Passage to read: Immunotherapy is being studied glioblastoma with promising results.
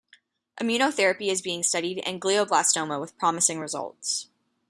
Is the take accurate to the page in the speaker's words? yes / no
no